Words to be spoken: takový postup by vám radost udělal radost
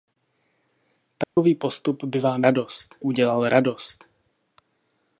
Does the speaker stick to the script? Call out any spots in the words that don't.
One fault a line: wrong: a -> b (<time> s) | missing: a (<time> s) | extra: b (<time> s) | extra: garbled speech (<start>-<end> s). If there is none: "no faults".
no faults